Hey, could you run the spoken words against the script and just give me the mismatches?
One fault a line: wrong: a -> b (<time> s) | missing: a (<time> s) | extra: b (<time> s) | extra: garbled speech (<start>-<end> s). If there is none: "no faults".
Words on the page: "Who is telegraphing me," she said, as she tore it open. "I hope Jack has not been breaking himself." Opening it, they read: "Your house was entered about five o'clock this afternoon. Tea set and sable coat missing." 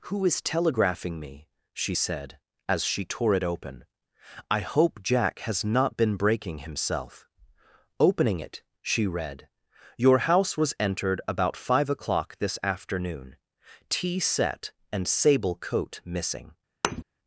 wrong: they -> she (8.8 s)